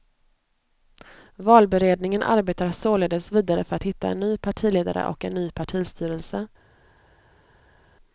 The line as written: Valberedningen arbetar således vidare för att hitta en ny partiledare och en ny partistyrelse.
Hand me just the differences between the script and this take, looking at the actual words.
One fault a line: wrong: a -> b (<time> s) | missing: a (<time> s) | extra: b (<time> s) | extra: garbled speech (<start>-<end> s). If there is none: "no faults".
no faults